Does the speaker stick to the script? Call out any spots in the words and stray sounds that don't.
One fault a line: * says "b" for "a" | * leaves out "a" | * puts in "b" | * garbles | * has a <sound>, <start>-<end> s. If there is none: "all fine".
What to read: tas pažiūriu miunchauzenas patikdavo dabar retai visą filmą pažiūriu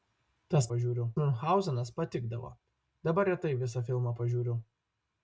all fine